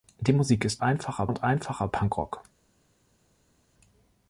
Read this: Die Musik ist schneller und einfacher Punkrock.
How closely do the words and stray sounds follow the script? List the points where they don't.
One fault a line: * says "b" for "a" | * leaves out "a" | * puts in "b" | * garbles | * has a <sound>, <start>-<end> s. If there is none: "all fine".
* says "einfacher" for "schneller"